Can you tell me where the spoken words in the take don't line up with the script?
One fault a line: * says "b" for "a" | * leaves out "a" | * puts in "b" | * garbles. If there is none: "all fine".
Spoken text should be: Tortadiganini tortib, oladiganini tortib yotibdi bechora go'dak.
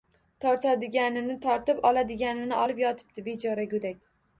* says "olib" for "tortib"